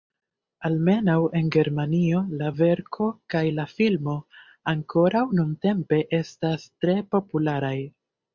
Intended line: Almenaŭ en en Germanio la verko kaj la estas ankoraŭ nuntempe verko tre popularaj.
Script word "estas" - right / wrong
wrong